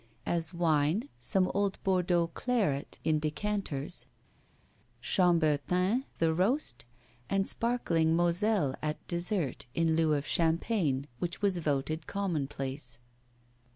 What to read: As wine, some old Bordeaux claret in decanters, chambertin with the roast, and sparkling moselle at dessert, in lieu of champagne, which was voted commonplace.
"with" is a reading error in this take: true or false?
true